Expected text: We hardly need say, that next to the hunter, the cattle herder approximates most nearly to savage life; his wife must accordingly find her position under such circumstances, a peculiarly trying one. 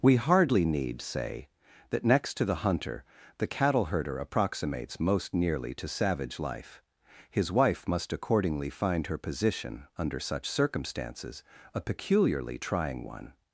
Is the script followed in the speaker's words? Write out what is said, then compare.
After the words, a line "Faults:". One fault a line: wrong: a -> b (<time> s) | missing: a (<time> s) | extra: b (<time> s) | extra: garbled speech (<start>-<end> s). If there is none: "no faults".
We hardly need say, that next to the hunter, the cattle herder approximates most nearly to savage life; his wife must accordingly find her position under such circumstances, a peculiarly trying one.
Faults:
no faults